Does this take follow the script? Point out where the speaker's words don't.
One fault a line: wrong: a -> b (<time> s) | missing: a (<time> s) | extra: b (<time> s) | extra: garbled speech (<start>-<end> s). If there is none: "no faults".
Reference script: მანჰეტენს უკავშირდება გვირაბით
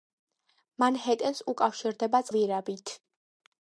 no faults